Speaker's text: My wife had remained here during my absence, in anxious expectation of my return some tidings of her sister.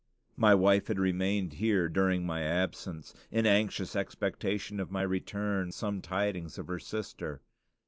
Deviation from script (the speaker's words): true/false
false